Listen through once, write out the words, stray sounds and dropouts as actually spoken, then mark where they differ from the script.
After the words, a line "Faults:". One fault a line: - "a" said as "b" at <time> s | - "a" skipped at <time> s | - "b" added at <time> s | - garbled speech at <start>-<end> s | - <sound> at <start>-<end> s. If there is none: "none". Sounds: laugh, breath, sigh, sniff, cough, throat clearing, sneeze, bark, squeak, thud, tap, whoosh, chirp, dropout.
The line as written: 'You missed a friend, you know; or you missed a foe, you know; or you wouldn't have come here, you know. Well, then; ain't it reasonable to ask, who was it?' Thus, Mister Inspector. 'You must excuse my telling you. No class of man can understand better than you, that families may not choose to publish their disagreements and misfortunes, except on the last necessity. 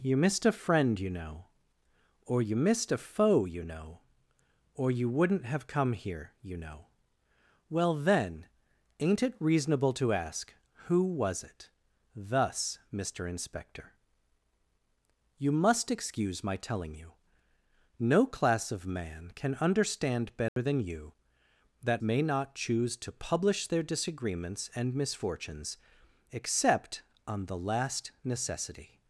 'You missed a friend, you know; or you missed a foe, you know; or you wouldn't have come here, you know. Well, then; ain't it reasonable to ask, who was it?' Thus, Mister Inspector. 'You must excuse my telling you. No class of man can understand better than you, that may not choose to publish their disagreements and misfortunes, except on the last necessity.
Faults:
- dropout at 20.5-20.6 s
- "families" skipped at 22.0 s